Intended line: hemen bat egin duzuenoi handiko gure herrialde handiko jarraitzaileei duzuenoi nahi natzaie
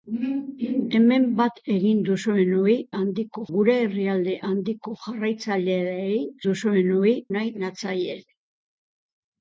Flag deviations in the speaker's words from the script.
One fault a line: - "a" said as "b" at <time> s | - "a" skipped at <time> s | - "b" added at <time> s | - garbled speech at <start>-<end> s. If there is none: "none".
none